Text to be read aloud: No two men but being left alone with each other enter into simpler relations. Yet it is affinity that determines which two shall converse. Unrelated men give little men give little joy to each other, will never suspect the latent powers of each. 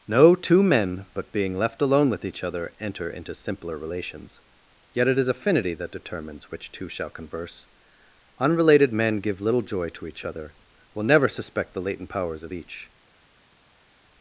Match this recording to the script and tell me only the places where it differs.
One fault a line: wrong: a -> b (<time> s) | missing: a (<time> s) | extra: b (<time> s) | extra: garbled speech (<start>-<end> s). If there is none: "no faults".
missing: men give little (9.6 s)